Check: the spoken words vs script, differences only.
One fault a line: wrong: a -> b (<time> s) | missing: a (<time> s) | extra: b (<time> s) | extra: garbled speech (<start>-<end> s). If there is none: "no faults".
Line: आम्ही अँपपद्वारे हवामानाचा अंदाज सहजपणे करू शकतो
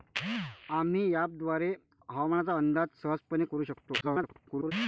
extra: garbled speech (4.0-4.7 s)